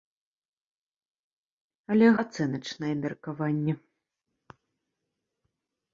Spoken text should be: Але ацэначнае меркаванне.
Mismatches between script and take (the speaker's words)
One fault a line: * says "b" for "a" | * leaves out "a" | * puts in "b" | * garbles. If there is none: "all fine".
all fine